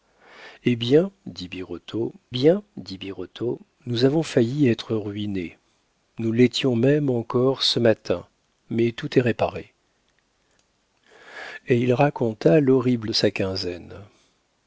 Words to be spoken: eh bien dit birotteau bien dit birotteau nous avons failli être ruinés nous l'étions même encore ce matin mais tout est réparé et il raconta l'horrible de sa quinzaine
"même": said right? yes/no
yes